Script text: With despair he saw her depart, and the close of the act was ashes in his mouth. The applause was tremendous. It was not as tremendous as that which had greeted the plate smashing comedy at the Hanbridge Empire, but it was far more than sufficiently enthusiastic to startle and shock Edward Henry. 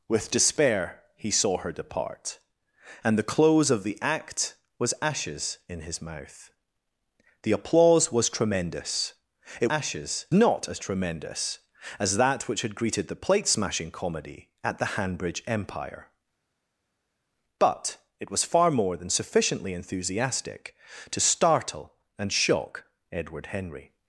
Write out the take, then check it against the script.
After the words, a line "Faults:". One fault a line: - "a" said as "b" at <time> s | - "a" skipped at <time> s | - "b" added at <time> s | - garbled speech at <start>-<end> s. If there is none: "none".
With despair he saw her depart, and the close of the act was ashes in his mouth. The applause was tremendous. It ashes not as tremendous as that which had greeted the plate smashing comedy at the Hanbridge Empire, but it was far more than sufficiently enthusiastic to startle and shock Edward Henry.
Faults:
- "was" said as "ashes" at 9.7 s